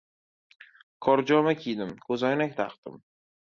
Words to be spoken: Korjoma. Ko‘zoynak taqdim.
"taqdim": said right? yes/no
yes